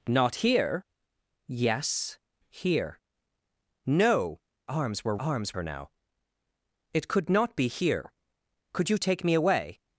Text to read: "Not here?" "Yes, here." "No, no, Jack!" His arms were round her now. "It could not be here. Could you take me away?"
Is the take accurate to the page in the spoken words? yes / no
no